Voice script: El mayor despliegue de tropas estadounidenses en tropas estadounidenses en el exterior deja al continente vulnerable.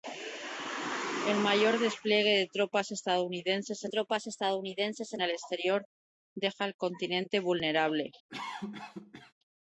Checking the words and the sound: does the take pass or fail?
fail